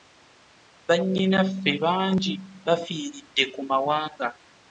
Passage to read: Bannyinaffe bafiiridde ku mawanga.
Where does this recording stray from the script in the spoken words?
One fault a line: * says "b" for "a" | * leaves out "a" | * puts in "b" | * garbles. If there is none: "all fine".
* puts in "bangi"